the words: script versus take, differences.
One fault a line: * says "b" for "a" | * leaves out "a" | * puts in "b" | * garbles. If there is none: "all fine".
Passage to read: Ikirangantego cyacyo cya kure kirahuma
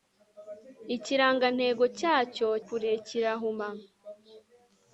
* leaves out "cya"